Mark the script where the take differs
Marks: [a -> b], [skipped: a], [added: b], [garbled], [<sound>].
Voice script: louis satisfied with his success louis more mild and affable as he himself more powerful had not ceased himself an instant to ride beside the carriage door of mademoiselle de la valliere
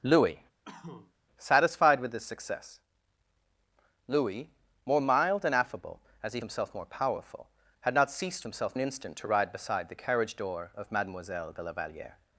louis [cough] satisfied with his success louis more mild and affable as he himself more powerful had not ceased himself an instant to ride beside the carriage door of mademoiselle de la valliere